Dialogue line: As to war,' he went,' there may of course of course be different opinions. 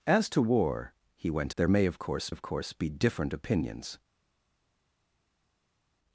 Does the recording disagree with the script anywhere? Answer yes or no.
no